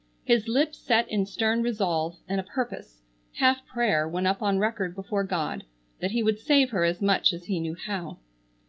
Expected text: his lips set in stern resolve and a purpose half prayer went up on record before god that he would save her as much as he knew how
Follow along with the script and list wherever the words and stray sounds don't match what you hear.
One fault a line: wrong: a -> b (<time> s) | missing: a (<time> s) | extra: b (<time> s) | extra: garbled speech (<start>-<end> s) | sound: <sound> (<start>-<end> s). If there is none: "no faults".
no faults